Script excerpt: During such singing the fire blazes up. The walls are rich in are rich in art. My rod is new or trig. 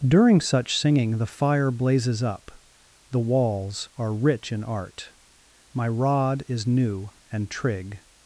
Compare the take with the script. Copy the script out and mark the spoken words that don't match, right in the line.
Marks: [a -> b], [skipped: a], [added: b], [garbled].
During such singing the fire blazes up. The walls are rich in [skipped: are rich in] art. My rod is new [or -> and] trig.